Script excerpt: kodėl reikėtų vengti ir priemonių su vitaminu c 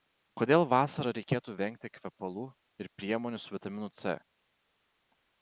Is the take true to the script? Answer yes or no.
no